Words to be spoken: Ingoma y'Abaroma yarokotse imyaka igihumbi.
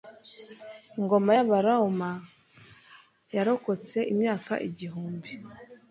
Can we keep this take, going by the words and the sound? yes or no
yes